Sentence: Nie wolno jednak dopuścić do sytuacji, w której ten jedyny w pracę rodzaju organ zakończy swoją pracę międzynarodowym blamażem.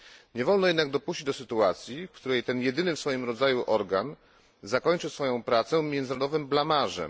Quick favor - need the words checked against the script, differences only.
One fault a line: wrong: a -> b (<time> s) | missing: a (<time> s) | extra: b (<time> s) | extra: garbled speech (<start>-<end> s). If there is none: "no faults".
wrong: pracę -> swoim (3.0 s)